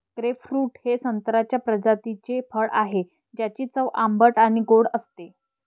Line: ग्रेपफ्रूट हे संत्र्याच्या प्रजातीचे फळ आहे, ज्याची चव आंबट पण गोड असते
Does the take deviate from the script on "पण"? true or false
true